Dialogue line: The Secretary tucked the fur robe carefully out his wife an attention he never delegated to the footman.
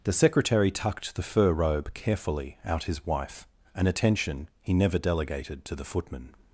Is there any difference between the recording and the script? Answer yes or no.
no